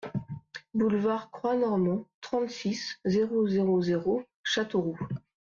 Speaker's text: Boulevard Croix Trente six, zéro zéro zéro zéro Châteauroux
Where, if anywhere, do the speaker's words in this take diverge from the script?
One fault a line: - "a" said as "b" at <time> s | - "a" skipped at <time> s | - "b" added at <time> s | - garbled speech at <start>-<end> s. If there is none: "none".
- "Normand" added at 1.6 s
- "zéro" skipped at 4.2 s